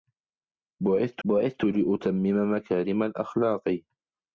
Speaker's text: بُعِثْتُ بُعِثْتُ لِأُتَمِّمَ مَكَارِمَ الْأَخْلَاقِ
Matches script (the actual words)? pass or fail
pass